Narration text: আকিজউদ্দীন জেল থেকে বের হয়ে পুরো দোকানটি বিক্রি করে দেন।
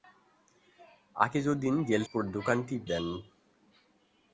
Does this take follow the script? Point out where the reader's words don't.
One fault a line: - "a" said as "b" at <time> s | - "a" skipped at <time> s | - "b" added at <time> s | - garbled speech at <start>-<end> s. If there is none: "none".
- "থেকে বের হয়ে" skipped at 2.0 s
- "বিক্রি করে" skipped at 2.7 s